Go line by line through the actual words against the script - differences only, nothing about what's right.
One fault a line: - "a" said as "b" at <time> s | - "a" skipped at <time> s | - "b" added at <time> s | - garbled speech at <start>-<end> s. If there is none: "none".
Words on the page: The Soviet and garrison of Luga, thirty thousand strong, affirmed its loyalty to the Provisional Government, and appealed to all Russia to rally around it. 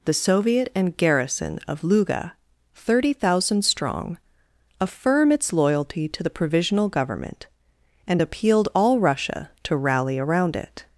- "affirmed" said as "affirm" at 4.8 s
- "to" skipped at 8.7 s